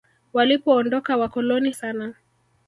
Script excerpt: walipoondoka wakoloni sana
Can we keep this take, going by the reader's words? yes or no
yes